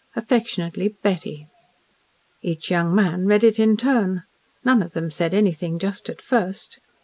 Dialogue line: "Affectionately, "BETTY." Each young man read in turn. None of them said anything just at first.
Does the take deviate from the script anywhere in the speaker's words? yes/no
yes